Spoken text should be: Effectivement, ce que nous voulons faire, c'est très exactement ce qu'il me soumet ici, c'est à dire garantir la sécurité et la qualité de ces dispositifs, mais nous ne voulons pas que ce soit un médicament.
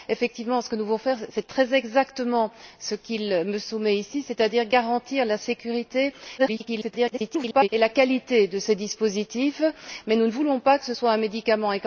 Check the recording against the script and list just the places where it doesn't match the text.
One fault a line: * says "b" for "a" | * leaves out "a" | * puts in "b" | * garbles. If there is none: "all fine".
* garbles